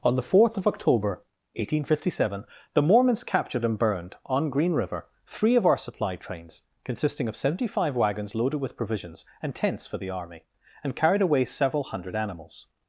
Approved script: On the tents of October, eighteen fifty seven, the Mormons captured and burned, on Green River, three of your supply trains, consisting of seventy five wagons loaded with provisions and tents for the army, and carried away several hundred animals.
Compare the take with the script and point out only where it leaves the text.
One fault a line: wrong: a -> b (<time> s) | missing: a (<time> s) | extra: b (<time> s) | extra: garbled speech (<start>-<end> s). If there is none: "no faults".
wrong: tents -> fourth (0.2 s)
wrong: your -> our (5.7 s)